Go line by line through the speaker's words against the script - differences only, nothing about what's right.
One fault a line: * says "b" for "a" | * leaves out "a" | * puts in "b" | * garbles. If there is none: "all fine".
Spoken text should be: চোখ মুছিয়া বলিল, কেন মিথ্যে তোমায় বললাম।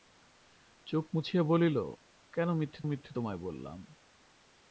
* puts in "মিথ্যে"